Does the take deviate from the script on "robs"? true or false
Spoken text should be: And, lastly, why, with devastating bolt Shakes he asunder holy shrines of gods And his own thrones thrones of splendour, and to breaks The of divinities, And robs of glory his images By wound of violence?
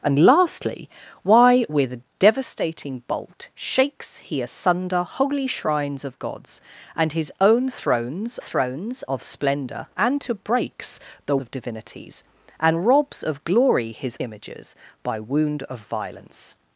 false